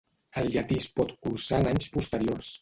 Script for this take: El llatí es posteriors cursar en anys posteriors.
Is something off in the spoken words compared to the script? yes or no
yes